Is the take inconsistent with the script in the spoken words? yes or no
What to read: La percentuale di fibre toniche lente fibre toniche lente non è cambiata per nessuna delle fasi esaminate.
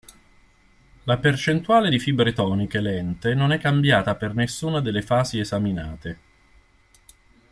yes